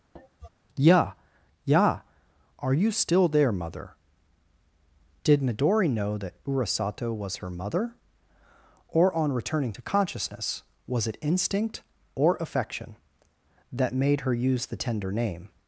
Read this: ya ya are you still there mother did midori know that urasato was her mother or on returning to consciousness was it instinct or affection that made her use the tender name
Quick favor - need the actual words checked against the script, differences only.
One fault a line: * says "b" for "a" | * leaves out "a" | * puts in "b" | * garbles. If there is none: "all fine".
all fine